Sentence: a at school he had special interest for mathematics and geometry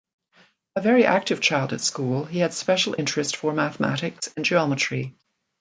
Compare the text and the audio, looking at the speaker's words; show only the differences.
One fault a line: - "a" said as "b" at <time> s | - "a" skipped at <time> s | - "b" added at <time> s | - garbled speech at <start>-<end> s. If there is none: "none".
- "very active child" added at 0.8 s